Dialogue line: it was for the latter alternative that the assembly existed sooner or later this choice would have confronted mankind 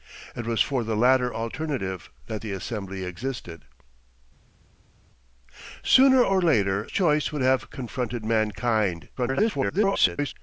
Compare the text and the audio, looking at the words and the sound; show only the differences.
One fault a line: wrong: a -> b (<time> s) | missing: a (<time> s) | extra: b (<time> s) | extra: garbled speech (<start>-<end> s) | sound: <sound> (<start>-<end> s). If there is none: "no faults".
missing: this (6.9 s)
extra: garbled speech (9.2-10.3 s)